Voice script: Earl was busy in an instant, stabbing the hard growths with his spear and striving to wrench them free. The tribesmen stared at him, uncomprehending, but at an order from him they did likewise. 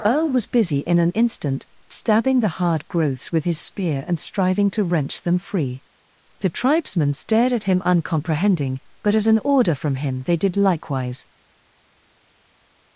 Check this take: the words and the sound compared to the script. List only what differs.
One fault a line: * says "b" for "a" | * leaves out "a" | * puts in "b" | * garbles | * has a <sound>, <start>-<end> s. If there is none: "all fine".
all fine